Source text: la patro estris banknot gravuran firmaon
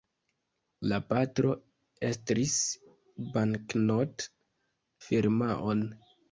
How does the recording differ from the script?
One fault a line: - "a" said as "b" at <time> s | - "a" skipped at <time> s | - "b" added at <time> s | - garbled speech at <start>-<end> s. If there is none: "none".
- "gravuran" skipped at 4.2 s